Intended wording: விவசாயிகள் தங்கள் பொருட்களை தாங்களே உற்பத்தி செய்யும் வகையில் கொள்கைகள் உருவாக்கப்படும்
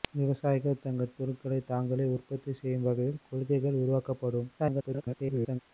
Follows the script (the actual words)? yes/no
no